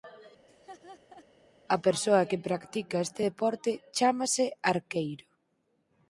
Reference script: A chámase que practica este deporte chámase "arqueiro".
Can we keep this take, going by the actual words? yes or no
no